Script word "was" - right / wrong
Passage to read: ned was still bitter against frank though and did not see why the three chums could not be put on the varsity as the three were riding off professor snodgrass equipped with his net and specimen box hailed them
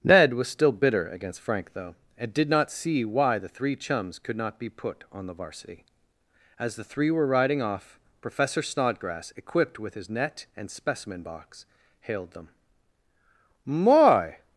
right